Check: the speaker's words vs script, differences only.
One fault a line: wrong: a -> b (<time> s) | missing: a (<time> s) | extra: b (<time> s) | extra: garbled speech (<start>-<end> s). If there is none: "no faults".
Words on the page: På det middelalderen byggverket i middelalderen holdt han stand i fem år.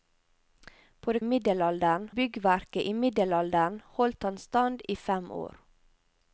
no faults